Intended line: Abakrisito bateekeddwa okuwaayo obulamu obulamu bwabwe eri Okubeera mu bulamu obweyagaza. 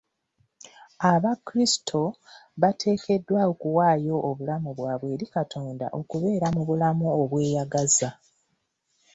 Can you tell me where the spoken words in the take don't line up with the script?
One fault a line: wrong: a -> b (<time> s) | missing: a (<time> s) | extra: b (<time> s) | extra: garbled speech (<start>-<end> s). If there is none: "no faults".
missing: obulamu (4.7 s)
extra: Katonda (5.4 s)